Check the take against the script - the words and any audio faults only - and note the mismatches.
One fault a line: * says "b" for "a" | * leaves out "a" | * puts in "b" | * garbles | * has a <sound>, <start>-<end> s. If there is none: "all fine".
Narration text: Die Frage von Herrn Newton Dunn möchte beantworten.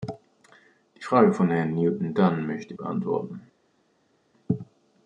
all fine